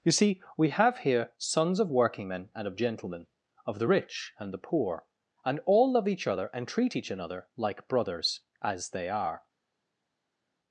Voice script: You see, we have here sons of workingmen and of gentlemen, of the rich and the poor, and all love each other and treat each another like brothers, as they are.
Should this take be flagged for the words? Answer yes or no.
no